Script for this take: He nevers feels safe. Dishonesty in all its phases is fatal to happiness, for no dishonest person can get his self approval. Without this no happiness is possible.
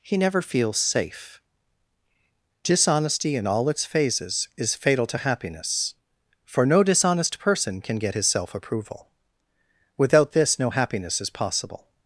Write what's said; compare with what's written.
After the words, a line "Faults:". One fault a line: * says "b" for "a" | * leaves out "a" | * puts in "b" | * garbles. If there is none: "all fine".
He never feels safe. Dishonesty in all its phases is fatal to happiness, for no dishonest person can get his self approval. Without this no happiness is possible.
Faults:
* says "never" for "nevers"